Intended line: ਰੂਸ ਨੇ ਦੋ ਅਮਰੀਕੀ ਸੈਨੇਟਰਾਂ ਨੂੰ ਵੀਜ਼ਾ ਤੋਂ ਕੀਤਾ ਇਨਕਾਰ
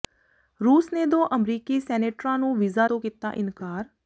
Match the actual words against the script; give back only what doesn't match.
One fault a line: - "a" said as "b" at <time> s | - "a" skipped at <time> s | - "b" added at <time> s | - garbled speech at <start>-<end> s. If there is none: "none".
none